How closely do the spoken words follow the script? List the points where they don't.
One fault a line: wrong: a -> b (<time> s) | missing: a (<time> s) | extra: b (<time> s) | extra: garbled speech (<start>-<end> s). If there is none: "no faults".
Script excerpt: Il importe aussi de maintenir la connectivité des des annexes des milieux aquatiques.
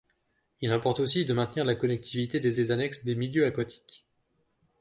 no faults